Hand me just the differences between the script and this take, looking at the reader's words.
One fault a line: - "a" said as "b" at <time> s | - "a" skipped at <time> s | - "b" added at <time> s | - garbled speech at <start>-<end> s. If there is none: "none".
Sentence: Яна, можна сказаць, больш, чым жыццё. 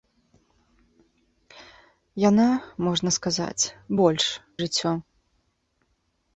- "чым" skipped at 4.2 s